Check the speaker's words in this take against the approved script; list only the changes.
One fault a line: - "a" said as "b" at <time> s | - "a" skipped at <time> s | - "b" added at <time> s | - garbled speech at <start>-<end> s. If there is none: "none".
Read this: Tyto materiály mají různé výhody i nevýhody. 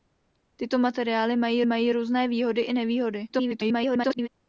- "mají" added at 1.7 s
- garbled speech at 3.3-4.3 s